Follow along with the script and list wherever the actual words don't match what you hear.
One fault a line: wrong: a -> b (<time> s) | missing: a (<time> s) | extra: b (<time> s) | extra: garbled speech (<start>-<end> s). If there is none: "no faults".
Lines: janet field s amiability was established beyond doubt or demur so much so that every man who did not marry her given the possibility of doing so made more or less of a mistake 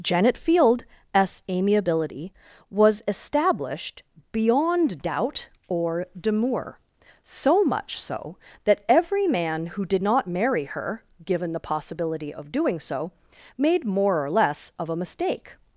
no faults